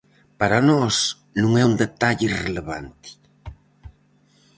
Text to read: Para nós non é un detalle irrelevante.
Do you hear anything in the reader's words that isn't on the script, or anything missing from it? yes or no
no